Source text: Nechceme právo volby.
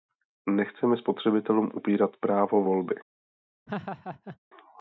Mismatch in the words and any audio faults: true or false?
true